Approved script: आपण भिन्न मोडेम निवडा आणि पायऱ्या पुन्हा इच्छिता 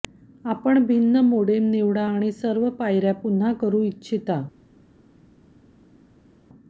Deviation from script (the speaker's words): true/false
true